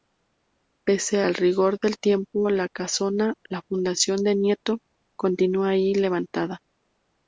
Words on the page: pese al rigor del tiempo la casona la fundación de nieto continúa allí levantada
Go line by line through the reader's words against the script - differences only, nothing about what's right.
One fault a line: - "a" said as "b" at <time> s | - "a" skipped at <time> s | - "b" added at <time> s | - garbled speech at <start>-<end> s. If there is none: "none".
none